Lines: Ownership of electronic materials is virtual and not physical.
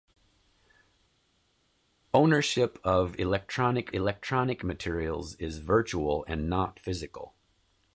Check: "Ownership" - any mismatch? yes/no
no